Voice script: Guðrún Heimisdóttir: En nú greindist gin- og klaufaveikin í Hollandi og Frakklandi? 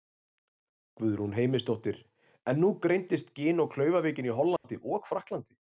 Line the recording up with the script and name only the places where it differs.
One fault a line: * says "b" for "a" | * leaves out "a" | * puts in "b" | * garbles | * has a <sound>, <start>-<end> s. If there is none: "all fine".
* has a dropout, 4.6-4.6 s